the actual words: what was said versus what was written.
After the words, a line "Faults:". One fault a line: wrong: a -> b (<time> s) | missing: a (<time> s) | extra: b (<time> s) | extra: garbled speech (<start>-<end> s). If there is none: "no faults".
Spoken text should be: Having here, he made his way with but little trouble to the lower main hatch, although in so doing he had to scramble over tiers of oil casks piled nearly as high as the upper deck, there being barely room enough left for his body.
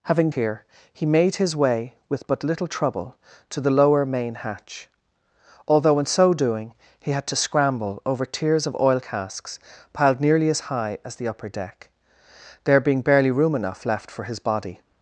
Having here, he made his way with but little trouble to the lower main hatch, although in so doing he had to scramble over tiers of oil casks piled nearly as high as the upper deck, there being barely room enough left for his body.
Faults:
no faults